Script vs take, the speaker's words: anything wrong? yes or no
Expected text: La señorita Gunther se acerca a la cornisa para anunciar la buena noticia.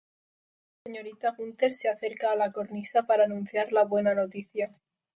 no